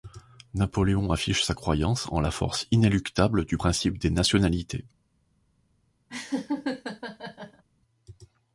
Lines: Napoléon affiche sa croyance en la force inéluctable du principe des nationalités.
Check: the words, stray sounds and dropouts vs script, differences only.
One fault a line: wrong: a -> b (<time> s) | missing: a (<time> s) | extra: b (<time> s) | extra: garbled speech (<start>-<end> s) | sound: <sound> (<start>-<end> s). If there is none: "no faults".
sound: laugh (6.1-7.6 s)